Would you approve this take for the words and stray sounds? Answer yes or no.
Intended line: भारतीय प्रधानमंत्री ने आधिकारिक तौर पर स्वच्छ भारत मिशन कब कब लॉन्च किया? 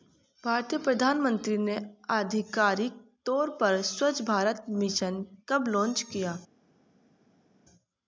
no